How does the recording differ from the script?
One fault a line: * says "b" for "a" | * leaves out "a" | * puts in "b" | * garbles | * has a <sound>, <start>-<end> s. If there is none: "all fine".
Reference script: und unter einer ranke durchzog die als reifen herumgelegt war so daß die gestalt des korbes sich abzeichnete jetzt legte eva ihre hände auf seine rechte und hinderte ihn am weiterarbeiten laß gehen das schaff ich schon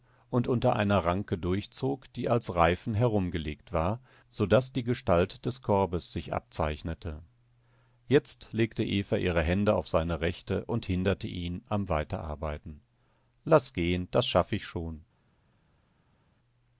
all fine